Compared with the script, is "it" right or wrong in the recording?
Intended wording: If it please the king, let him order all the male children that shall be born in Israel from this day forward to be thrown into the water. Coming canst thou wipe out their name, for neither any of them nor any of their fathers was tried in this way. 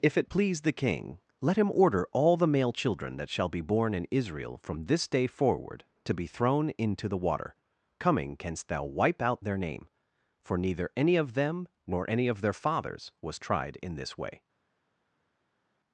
right